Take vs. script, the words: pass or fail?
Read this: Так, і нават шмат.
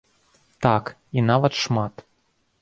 pass